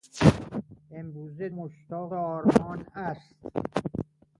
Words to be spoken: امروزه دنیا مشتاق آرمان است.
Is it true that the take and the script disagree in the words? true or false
true